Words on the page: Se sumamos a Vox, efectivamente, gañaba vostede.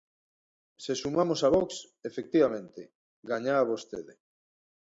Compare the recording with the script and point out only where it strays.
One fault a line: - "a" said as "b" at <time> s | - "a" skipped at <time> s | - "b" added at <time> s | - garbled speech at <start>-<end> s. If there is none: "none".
none